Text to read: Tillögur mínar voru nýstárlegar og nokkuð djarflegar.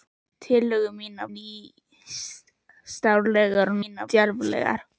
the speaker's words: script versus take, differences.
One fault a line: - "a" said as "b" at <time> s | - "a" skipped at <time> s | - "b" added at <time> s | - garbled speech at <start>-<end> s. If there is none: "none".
- "voru" skipped at 1.3 s
- "nokkuð" said as "mínar" at 3.8 s